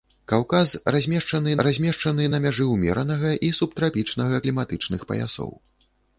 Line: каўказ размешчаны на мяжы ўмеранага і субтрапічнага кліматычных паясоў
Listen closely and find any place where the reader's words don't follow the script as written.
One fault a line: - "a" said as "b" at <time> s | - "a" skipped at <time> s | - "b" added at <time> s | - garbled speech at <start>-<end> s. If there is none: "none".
- "размешчаны" added at 1.7 s